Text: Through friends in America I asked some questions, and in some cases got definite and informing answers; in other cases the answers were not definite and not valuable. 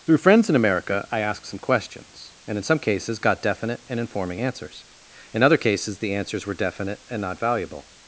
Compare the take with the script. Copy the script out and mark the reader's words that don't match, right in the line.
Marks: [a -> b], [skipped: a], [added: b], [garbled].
Through friends in America I asked some questions, and in some cases got definite and informing answers; in other cases the answers were [skipped: not] definite and not valuable.